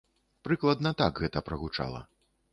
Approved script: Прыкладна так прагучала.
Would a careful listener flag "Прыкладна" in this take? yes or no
no